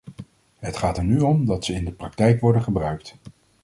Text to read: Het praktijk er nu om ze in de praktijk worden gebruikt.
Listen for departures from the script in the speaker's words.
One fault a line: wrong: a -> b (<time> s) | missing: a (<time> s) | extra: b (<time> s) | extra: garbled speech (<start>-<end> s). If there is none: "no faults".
wrong: praktijk -> gaat (0.8 s)
extra: dat (1.5 s)